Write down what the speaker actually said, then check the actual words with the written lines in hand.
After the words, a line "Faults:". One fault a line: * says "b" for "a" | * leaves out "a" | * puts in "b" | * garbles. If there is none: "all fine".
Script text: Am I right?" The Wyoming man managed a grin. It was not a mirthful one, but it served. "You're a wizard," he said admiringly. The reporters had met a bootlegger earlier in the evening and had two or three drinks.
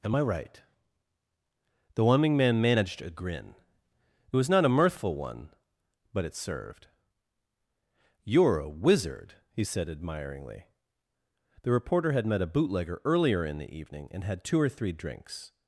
Am I right?" The Wyoming man managed a grin. It was not a mirthful one, but it served. "You're a wizard," he said admiringly. The reporter had met a bootlegger earlier in the evening and had two or three drinks.
Faults:
* says "reporter" for "reporters"